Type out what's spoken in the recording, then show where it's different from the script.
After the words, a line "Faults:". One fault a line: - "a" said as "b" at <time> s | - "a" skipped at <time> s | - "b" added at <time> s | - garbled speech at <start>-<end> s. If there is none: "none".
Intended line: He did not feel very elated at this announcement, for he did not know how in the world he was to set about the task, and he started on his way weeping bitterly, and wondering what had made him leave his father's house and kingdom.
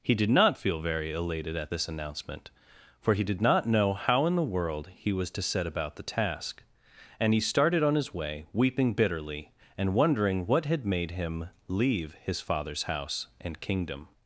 He did not feel very elated at this announcement, for he did not know how in the world he was to set about the task, and he started on his way weeping bitterly, and wondering what had made him leave his father's house and kingdom.
Faults:
none